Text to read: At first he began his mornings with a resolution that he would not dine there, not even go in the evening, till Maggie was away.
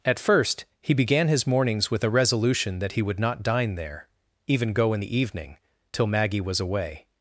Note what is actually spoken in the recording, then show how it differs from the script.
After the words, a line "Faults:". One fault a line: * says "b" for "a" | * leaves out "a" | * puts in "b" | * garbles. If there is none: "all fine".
At first he began his mornings with a resolution that he would not dine there, even go in the evening, till Maggie was away.
Faults:
* leaves out "not"